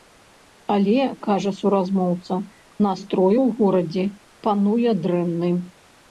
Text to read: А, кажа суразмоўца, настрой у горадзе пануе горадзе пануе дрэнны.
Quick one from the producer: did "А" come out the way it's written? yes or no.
no